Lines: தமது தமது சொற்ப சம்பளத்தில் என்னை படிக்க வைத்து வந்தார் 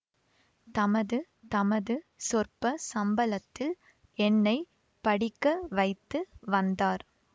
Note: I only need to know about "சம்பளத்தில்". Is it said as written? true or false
true